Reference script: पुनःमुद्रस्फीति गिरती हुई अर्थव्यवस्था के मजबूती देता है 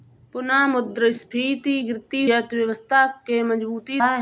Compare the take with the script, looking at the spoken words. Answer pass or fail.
fail